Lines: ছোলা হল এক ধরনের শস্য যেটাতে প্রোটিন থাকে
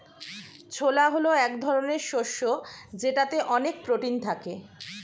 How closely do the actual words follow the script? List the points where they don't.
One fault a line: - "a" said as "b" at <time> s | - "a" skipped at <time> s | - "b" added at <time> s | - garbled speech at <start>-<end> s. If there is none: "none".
- "অনেক" added at 3.5 s